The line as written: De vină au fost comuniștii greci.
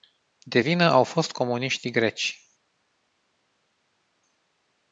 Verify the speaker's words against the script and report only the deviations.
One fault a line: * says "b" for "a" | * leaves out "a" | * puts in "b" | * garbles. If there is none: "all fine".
all fine